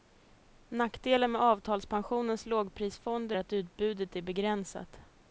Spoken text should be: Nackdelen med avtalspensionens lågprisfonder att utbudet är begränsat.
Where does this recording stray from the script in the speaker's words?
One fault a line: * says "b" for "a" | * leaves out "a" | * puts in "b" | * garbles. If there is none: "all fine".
all fine